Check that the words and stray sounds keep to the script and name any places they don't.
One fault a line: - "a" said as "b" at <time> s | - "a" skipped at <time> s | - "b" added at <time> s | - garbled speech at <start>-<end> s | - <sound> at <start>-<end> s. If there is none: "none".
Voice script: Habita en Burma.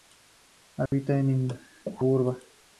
- dropout at 0.9-0.9 s